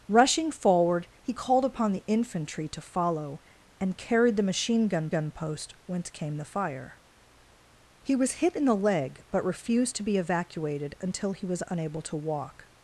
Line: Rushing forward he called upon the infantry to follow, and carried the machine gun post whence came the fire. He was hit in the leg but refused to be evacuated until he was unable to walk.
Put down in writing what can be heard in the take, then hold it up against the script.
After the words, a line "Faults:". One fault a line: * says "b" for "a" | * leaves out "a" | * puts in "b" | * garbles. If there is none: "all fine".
Rushing forward he called upon the infantry to follow, and carried the machine gun gun post whence came the fire. He was hit in the leg but refused to be evacuated until he was unable to walk.
Faults:
* puts in "gun"